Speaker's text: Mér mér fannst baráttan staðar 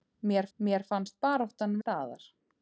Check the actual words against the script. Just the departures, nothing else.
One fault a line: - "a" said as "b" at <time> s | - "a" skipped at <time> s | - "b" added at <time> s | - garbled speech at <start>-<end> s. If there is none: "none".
none